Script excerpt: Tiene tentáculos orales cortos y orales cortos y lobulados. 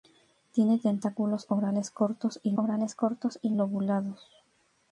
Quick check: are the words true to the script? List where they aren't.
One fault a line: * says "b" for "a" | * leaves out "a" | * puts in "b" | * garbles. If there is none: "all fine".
all fine